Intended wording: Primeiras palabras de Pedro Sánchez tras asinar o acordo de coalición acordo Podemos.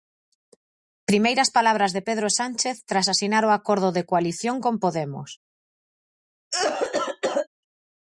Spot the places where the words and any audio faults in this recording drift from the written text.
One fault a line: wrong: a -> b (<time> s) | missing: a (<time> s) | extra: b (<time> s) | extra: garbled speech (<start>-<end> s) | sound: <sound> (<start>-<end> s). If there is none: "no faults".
wrong: acordo -> con (4.6 s)
sound: cough (6.5-7.5 s)